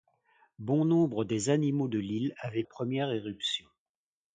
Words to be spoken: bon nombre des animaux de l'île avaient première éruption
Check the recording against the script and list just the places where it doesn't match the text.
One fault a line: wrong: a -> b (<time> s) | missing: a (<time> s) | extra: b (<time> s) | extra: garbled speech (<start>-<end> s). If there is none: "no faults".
no faults